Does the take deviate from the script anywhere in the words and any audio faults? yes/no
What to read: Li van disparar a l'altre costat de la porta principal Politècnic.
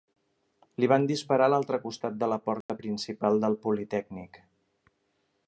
yes